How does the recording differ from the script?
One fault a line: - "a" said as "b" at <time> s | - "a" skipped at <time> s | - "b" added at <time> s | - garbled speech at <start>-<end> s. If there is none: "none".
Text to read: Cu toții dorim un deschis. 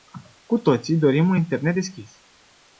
- "internet" added at 1.3 s